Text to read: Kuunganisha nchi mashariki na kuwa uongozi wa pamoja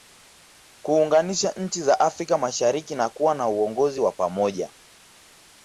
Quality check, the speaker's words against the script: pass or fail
fail